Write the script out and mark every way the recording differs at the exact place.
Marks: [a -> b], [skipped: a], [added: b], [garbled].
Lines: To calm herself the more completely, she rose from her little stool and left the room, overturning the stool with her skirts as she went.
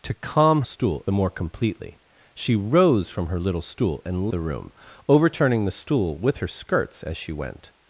To calm [herself -> stool] the more completely, she rose from her little stool and [skipped: left] the room, overturning the stool with her skirts as she went.